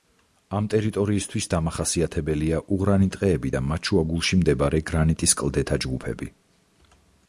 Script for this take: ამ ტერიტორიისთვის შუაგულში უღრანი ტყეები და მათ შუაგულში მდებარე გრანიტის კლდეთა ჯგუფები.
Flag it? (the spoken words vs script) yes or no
yes